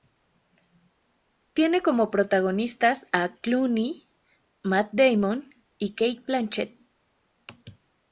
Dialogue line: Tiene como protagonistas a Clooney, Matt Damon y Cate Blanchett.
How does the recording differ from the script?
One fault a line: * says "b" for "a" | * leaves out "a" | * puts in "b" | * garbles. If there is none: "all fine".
all fine